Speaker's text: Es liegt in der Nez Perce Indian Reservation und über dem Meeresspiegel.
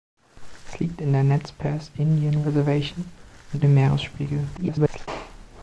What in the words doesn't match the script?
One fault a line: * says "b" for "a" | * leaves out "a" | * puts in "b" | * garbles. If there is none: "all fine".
* leaves out "über"
* garbles